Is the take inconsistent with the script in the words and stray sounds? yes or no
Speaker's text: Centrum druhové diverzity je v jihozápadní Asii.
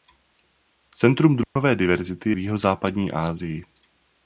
yes